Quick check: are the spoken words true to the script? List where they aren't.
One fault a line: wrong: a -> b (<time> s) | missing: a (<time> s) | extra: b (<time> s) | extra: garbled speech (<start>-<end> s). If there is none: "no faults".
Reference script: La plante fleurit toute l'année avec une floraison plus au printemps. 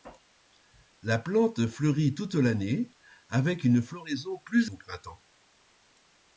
no faults